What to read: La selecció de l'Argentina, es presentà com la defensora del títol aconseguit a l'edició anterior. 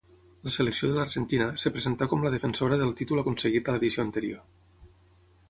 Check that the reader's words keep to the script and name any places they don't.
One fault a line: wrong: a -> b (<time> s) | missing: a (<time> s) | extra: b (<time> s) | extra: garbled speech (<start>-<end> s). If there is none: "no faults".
no faults